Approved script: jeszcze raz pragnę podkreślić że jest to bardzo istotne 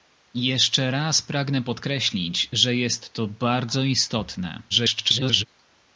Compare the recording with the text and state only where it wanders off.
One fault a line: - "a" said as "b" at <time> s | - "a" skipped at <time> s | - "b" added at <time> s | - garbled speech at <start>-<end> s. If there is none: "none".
- garbled speech at 4.7-5.5 s